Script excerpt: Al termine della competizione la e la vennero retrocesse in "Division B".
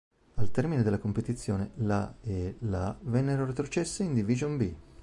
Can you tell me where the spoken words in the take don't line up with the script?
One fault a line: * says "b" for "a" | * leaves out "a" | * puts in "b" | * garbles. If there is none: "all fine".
all fine